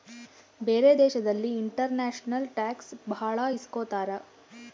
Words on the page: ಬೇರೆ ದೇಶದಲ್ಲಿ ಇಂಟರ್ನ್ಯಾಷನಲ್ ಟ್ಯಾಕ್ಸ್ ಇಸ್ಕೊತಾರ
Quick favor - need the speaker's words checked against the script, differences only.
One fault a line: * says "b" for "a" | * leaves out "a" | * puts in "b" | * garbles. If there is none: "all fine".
* puts in "ಭಾಳ"